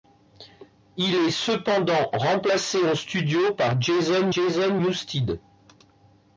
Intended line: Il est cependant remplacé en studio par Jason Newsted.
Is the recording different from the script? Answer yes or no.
yes